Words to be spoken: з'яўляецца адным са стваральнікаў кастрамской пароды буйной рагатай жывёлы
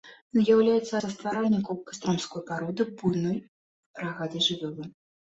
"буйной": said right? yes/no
yes